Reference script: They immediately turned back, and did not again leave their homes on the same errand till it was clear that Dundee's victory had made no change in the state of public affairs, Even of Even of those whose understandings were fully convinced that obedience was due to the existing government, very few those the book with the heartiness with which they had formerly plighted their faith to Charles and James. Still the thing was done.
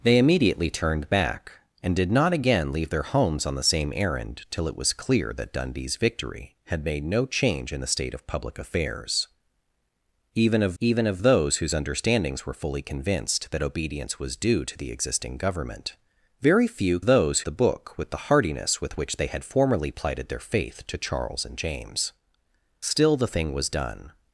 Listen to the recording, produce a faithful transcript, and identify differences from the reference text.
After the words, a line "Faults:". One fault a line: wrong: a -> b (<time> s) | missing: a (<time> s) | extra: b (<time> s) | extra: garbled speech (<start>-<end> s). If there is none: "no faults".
They immediately turned back, and did not again leave their homes on the same errand till it was clear that Dundee's victory had made no change in the state of public affairs, Even of Even of those whose understandings were fully convinced that obedience was due to the existing government, very few those the book with the heartiness with which they had formerly plighted their faith to Charles and James. Still the thing was done.
Faults:
no faults